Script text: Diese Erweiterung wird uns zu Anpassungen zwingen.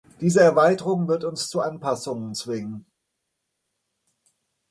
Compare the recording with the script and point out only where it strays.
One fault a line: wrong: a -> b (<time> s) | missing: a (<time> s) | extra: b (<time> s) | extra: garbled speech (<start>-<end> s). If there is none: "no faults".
no faults